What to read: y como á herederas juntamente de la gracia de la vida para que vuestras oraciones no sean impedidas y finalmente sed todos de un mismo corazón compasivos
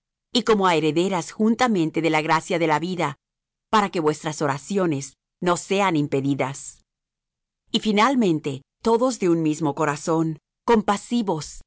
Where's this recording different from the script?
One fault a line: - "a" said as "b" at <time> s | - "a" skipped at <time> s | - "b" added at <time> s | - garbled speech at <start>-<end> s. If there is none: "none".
- "sed" skipped at 8.6 s